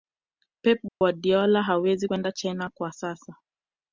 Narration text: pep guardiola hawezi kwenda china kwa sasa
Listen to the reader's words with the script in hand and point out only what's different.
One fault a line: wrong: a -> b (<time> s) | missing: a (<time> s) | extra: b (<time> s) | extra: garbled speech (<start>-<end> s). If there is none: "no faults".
no faults